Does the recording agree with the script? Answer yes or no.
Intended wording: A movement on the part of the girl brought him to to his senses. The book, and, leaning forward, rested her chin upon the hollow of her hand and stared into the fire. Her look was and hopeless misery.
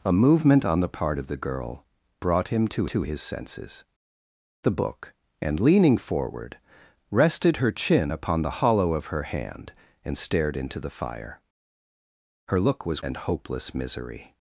yes